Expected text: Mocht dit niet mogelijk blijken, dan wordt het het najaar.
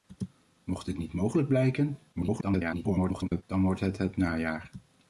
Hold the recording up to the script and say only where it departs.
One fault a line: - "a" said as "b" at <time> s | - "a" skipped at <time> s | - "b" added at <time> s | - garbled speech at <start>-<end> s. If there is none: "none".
- garbled speech at 2.1-3.4 s